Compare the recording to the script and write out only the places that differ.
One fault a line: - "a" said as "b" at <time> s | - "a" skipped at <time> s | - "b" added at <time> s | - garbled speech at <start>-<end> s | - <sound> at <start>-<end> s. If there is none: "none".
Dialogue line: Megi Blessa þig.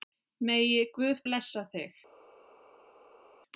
- "Guð" added at 1.0 s